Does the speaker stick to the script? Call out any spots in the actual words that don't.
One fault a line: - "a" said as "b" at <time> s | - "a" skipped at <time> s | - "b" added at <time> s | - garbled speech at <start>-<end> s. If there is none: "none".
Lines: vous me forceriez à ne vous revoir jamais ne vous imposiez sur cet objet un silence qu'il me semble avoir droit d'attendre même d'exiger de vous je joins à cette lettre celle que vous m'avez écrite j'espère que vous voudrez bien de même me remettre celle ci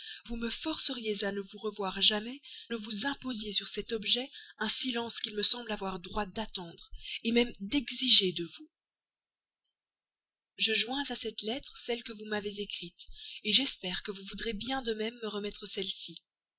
none